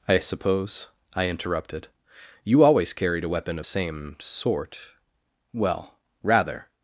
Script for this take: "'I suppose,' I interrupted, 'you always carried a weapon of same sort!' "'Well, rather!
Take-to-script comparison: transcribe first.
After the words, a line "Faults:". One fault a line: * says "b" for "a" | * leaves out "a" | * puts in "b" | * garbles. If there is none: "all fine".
"'I suppose,' I interrupted, 'you always carried a weapon of same sort!' "'Well, rather!
Faults:
all fine